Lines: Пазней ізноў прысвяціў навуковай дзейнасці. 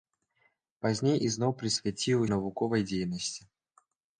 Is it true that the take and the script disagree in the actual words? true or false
false